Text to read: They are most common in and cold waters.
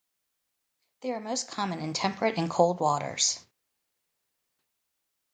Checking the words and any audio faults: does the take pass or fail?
fail